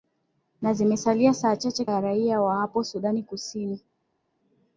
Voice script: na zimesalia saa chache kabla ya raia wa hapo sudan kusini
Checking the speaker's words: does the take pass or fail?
fail